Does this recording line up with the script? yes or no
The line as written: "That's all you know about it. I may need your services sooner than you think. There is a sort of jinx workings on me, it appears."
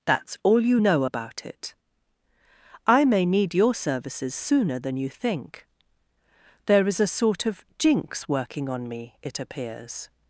no